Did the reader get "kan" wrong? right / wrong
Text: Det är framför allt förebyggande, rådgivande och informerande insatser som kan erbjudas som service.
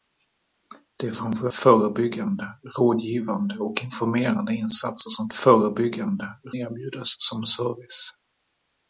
wrong